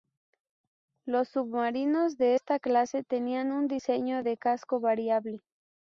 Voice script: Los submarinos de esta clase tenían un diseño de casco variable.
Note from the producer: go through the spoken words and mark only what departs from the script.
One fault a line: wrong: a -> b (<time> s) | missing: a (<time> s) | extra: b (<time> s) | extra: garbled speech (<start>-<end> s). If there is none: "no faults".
no faults